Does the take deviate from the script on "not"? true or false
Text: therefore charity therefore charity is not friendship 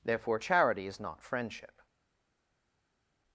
false